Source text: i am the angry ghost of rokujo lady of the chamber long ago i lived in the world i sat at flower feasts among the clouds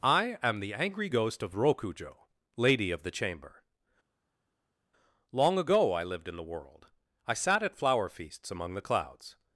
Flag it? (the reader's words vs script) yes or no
no